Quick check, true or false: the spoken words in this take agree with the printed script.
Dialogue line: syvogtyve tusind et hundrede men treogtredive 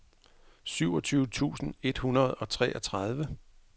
false